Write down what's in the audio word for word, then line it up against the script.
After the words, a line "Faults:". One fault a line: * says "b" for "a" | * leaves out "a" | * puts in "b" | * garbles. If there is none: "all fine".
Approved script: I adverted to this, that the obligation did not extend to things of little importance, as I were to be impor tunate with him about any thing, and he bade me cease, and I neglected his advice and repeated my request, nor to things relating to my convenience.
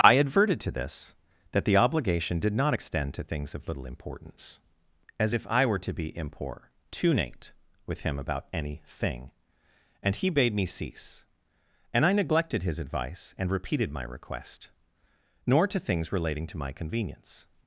I adverted to this, that the obligation did not extend to things of little importance, as if I were to be impor tunate with him about any thing, and he bade me cease, and I neglected his advice and repeated my request, nor to things relating to my convenience.
Faults:
* puts in "if"